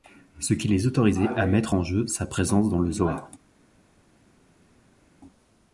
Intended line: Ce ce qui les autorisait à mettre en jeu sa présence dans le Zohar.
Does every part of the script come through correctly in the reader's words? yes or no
no